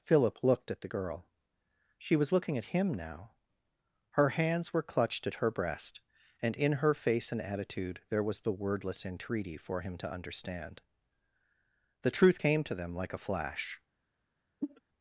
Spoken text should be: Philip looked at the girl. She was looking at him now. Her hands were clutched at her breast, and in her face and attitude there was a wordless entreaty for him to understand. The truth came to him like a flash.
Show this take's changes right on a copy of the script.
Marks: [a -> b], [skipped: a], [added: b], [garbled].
Philip looked at the girl. She was looking at him now. Her hands were clutched at her breast, and in her face and attitude there was [a -> the] wordless entreaty for him to understand. The truth came to [him -> them] like a flash.